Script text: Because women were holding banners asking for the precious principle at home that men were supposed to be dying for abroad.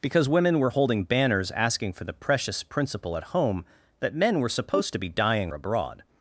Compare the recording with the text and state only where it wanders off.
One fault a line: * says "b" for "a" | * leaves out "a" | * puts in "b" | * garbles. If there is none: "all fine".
* leaves out "for"